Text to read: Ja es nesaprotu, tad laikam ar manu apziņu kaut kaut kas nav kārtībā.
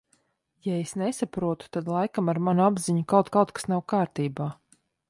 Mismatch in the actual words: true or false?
false